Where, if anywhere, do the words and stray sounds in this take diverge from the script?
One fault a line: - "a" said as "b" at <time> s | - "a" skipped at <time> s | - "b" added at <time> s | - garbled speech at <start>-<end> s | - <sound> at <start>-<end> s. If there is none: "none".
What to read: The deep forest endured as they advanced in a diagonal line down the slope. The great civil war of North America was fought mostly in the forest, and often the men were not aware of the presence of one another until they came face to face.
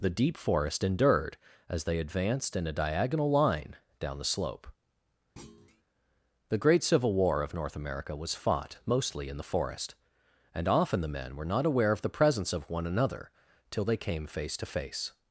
- thud at 5.4-5.8 s
- "until" said as "till" at 13.7 s